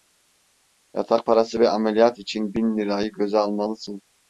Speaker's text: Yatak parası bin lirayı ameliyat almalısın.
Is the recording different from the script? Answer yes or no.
yes